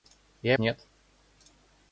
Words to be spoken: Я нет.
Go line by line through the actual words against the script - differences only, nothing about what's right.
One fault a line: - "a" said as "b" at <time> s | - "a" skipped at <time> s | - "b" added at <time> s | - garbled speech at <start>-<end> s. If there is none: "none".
none